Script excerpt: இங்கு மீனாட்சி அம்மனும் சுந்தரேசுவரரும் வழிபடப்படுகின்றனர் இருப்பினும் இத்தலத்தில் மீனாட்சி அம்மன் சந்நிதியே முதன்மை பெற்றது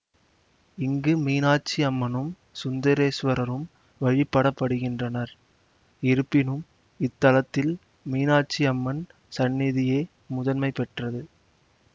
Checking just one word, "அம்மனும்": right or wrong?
right